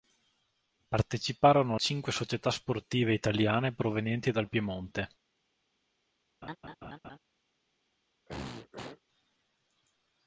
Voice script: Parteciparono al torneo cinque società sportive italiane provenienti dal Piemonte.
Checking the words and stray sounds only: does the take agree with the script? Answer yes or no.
no